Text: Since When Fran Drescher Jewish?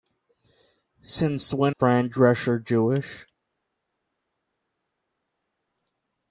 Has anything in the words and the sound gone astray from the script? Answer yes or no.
no